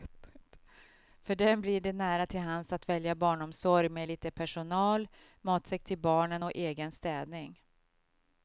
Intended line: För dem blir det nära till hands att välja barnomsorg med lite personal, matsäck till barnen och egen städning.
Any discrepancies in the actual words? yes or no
no